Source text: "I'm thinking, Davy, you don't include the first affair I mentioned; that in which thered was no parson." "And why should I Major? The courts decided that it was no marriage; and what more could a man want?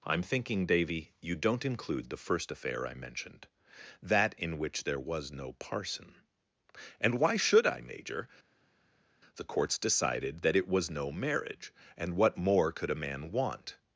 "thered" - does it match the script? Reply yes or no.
no